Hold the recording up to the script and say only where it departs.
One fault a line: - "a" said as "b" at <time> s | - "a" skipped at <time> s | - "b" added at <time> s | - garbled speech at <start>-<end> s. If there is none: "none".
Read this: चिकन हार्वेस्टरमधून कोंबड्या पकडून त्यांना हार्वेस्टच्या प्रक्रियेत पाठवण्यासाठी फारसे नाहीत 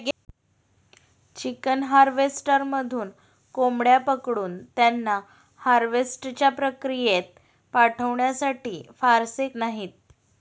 none